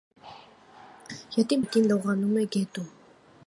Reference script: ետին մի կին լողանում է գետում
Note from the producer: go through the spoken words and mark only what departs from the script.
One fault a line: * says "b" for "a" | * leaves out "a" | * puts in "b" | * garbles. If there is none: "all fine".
all fine